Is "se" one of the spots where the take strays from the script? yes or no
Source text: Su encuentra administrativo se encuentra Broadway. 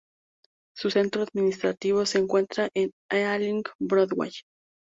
no